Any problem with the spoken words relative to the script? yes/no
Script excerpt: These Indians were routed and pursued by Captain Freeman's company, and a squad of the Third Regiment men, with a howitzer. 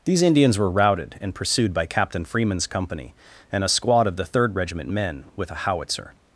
no